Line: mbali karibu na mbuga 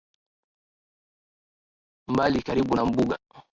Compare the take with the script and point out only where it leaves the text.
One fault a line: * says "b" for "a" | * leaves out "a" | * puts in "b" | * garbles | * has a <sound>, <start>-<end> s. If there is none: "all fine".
all fine